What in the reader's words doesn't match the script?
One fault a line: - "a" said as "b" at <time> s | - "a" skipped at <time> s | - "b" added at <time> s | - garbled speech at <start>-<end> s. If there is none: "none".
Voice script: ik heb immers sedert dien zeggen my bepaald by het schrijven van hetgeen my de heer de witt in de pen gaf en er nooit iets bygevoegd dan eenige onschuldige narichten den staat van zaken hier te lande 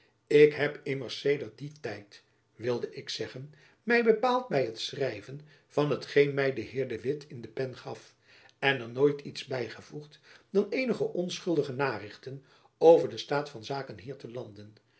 - "tijd wilde ik" added at 1.8 s
- "over" added at 12.8 s